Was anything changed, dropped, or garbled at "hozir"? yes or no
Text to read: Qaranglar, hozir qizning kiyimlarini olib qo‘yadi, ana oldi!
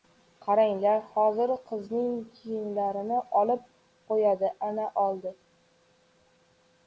no